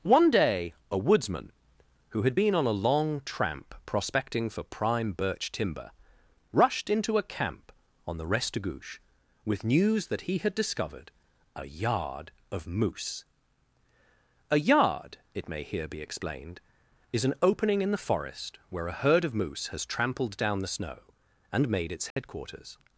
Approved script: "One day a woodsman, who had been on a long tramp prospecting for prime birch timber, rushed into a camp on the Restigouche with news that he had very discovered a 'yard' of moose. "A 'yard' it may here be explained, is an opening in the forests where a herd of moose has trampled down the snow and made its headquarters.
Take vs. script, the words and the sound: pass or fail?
fail